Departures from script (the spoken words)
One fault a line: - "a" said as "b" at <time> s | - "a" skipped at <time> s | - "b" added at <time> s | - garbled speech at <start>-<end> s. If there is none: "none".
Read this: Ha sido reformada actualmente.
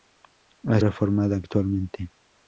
- "sido" skipped at 0.8 s